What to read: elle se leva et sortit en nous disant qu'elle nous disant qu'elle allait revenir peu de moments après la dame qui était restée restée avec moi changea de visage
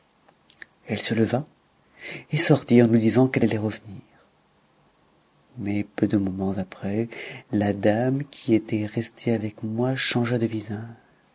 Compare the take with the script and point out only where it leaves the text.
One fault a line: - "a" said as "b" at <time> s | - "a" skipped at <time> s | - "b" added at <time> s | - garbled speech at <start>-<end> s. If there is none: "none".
- "nous disant qu'elle" skipped at 3.5 s
- "mais" added at 5.6 s
- "restée" skipped at 9.3 s